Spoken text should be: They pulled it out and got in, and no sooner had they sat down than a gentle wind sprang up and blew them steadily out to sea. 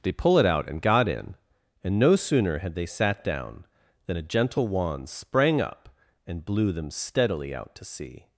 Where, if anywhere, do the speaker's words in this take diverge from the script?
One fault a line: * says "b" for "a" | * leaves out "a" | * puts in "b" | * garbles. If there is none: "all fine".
* says "pull" for "pulled"
* says "wand" for "wind"